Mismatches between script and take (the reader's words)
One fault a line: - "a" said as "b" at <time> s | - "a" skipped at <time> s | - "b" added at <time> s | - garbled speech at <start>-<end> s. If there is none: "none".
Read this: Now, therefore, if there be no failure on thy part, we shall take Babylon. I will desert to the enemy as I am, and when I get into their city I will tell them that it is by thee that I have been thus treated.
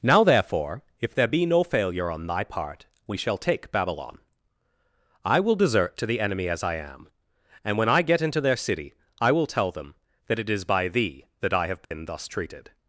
none